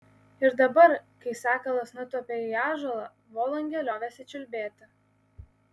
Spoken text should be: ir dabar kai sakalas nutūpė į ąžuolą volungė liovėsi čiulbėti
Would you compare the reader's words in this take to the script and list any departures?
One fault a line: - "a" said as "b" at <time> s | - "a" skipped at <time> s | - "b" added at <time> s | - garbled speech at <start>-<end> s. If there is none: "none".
none